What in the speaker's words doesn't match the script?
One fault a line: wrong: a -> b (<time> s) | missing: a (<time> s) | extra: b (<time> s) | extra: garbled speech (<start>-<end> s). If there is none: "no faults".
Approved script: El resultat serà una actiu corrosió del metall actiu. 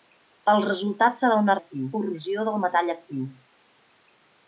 no faults